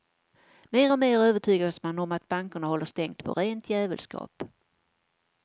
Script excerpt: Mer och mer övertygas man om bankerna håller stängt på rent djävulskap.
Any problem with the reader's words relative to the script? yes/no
yes